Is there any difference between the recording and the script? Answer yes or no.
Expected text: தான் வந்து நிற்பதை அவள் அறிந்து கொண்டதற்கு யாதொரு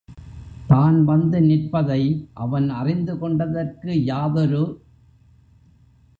yes